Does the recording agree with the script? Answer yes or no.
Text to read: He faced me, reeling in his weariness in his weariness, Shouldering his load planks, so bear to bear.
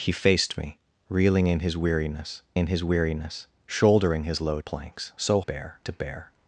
yes